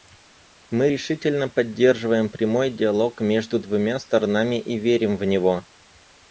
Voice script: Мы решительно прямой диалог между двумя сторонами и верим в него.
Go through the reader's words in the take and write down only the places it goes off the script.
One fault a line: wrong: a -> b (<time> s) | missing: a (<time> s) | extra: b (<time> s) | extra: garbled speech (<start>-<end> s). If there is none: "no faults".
extra: поддерживаем (1.5 s)